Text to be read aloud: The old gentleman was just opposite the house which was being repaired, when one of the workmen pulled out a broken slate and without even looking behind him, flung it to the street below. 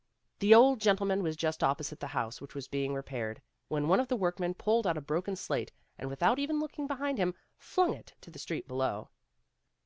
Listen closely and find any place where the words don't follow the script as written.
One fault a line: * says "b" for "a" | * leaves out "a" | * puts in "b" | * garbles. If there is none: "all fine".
all fine